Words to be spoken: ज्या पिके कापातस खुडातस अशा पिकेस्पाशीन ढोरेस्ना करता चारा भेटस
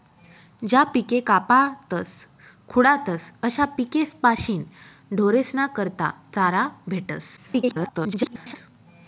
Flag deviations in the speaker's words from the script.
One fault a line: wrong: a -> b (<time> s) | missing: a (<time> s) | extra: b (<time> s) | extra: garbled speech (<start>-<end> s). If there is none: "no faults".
extra: garbled speech (7.4-8.6 s)